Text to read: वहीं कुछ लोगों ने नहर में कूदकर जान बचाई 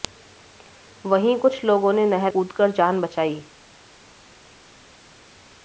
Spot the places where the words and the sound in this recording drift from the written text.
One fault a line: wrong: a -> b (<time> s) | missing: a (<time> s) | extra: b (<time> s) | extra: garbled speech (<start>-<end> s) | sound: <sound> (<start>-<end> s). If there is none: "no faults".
missing: में (2.3 s)